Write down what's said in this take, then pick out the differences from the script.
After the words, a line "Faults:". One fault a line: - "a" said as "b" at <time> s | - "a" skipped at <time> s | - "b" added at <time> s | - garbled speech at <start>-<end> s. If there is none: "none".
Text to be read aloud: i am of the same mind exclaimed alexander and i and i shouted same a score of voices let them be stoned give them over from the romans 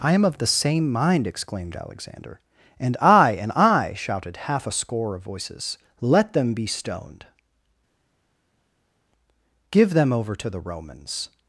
i am of the same mind exclaimed alexander and i and i shouted half a score of voices let them be stoned give them over to the romans
Faults:
- "same" said as "half" at 4.5 s
- "from" said as "to" at 10.3 s